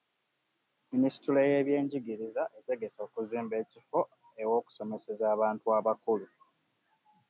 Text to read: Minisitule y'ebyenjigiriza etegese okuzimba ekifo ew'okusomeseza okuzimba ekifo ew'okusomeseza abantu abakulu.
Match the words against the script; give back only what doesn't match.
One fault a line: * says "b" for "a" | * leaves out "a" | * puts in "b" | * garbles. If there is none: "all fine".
* leaves out "okuzimba ekifo ew'okusomeseza"